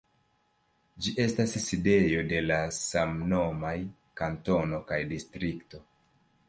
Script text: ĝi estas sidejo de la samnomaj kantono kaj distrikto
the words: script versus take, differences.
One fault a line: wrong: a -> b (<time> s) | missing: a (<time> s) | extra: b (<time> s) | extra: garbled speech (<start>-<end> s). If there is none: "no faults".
no faults